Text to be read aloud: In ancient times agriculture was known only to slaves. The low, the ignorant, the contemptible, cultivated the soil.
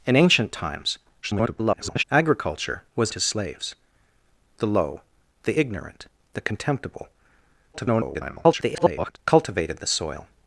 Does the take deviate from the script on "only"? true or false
true